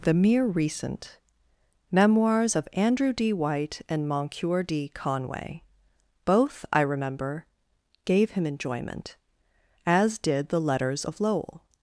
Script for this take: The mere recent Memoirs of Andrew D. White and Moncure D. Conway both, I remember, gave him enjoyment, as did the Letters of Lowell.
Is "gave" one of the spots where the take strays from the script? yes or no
no